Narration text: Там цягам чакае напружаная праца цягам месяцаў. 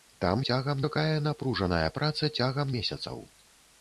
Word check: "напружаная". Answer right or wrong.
right